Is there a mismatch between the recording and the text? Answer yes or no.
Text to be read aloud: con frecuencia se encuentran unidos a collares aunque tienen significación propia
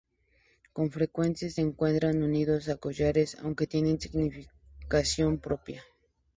no